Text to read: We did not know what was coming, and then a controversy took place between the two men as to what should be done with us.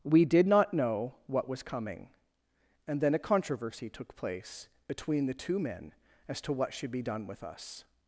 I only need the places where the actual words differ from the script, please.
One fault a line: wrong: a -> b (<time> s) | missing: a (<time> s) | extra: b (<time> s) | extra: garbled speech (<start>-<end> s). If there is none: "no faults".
no faults